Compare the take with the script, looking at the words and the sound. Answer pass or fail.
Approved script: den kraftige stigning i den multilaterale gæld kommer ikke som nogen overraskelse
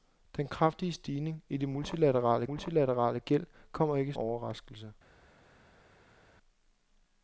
fail